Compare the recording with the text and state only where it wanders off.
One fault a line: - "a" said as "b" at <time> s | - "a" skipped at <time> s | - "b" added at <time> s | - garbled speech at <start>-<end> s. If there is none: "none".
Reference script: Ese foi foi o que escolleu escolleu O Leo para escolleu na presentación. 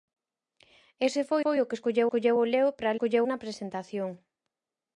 none